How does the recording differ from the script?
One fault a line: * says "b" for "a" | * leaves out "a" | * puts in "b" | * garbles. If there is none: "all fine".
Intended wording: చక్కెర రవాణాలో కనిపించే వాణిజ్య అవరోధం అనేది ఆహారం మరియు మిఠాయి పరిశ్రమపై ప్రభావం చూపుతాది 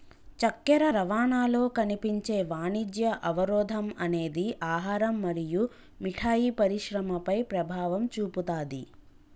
all fine